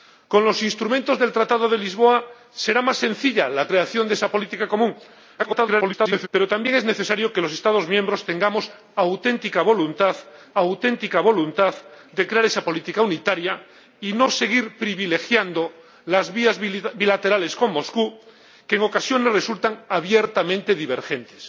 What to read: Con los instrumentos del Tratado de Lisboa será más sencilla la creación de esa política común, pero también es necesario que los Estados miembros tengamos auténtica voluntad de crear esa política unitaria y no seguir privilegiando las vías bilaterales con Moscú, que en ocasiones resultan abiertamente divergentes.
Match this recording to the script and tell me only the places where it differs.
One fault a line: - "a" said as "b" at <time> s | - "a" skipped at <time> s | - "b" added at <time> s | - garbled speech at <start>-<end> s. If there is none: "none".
- garbled speech at 5.4-6.3 s
- "auténtica voluntad" added at 10.5 s